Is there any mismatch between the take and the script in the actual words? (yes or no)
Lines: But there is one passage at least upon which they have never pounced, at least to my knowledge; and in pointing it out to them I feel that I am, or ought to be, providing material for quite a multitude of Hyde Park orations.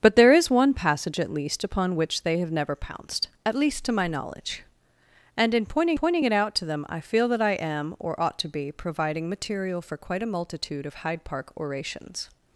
yes